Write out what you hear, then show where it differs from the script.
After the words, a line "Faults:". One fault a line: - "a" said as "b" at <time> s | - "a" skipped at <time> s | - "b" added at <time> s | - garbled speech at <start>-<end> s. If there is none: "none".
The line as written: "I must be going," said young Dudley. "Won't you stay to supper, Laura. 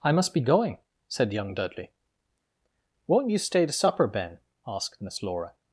"I must be going," said young Dudley. "Won't you stay to supper, Ben?" asked Miss Laura.
Faults:
- "Ben asked Miss" added at 4.1 s